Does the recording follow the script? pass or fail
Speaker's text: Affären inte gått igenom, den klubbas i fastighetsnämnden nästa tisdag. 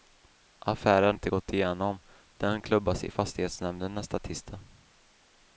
pass